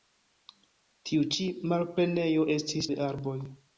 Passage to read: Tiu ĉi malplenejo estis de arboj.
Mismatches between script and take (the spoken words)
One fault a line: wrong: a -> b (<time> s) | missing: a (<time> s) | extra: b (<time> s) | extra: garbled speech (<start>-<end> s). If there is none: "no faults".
no faults